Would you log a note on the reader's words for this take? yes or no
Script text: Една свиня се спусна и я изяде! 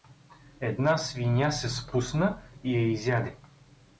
no